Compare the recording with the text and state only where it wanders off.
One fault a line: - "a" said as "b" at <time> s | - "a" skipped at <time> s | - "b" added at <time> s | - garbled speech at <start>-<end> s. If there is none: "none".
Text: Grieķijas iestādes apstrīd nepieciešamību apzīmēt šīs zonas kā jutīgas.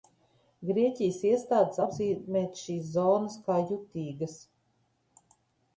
- "apstrīd nepieciešamību" skipped at 1.8 s